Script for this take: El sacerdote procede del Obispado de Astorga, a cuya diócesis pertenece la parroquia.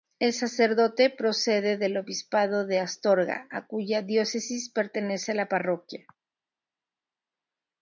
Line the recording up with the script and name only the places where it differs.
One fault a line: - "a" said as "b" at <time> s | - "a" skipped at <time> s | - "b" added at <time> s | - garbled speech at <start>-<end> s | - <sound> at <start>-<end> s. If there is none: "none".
none